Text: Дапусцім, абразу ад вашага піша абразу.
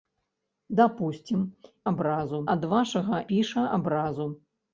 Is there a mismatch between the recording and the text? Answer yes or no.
no